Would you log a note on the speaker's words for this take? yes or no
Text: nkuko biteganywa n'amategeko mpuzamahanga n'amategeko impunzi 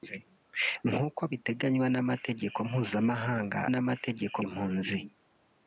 no